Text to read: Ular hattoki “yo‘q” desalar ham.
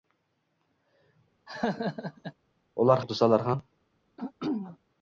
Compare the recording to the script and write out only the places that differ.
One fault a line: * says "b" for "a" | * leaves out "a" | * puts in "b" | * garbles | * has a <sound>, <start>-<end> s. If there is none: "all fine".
* has a laugh, 1.5-2.3 s
* leaves out "hattoki"
* has a throat clearing, 4.2-4.8 s